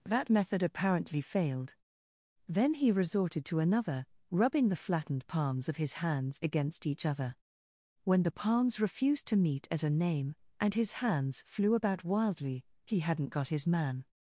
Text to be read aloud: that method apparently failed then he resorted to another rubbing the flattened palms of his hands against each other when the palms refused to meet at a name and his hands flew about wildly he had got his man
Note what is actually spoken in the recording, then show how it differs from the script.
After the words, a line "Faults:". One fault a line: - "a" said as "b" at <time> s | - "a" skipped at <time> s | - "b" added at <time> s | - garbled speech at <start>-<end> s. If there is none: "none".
that method apparently failed then he resorted to another rubbing the flattened palms of his hands against each other when the palms refused to meet at a name and his hands flew about wildly he hadn't got his man
Faults:
- "had" said as "hadn't" at 13.0 s